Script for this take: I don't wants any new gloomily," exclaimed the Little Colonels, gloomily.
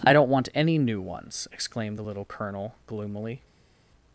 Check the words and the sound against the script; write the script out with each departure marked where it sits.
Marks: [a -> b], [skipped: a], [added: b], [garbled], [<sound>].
I don't [wants -> want] any new [gloomily," -> ones] exclaimed the Little [Colonels, -> Colonel] gloomily.